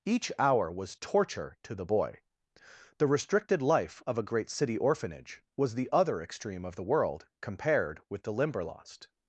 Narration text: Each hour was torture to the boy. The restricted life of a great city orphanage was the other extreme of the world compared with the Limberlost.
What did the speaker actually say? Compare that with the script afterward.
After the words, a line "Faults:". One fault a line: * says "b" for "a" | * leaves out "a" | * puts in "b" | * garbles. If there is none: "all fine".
Each hour was torture to the boy. The restricted life of a great city orphanage was the other extreme of the world compared with the Limberlost.
Faults:
all fine